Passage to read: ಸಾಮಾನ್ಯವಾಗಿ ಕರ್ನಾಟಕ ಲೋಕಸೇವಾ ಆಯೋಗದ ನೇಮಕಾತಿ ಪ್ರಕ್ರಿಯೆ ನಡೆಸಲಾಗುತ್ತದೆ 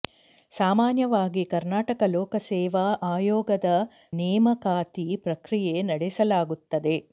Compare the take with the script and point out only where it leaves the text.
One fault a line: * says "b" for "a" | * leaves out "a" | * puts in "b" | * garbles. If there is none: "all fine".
all fine